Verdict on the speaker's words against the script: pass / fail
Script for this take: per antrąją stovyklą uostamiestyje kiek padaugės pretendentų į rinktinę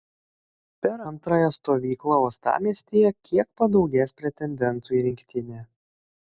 pass